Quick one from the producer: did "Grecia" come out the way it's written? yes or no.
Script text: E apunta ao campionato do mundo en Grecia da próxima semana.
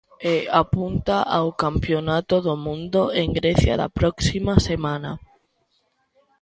yes